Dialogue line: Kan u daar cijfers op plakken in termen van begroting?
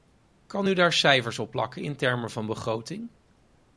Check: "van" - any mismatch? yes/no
no